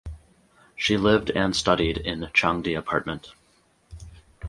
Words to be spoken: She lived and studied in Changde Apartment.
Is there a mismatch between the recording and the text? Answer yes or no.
no